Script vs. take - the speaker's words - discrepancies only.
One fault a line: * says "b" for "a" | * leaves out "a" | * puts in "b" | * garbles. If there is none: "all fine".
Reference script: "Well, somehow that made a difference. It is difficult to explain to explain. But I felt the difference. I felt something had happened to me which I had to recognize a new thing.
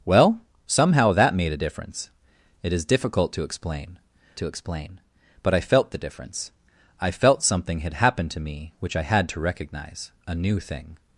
all fine